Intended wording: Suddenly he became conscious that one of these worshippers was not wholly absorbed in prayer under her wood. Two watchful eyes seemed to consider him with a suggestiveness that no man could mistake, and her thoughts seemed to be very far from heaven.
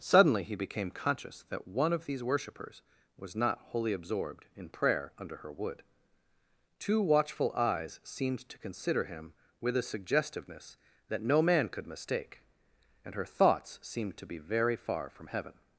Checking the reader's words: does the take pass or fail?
pass